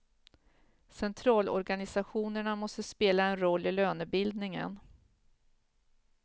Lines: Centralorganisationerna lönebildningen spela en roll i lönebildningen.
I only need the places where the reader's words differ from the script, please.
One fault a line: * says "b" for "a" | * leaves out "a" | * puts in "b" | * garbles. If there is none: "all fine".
* says "måste" for "lönebildningen"